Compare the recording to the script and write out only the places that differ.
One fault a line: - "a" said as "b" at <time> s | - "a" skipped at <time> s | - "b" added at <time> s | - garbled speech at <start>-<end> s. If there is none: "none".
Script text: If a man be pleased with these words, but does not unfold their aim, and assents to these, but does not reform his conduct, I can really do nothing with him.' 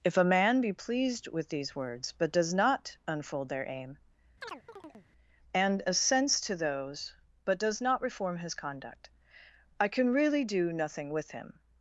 - "these" said as "those" at 6.5 s